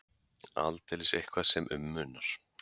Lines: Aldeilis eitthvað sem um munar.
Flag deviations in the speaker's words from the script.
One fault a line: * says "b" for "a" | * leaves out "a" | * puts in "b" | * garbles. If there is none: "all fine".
all fine